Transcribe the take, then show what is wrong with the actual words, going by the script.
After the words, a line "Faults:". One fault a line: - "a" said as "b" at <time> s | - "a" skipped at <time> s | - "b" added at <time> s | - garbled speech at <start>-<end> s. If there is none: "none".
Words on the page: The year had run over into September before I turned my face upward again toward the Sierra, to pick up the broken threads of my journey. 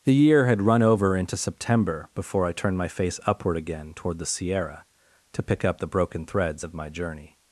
The year had run over into September before I turned my face upward again toward the Sierra, to pick up the broken threads of my journey.
Faults:
none